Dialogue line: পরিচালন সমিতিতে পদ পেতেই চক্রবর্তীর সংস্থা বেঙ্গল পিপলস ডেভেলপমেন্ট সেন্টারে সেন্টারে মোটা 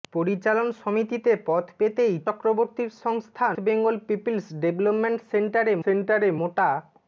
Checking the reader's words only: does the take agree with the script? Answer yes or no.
yes